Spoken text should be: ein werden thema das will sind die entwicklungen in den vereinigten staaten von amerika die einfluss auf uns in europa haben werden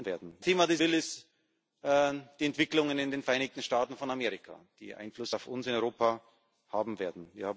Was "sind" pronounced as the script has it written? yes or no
yes